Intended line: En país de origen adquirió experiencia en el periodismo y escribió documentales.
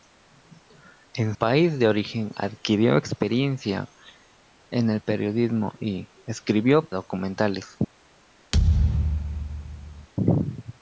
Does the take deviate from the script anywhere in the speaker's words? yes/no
no